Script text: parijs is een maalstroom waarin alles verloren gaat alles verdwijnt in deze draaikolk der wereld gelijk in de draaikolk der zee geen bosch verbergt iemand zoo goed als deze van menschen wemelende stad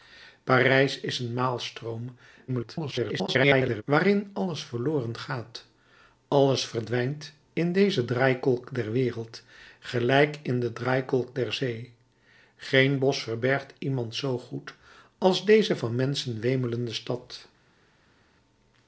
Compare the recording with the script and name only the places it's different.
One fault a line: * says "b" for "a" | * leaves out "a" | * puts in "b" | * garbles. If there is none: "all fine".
* garbles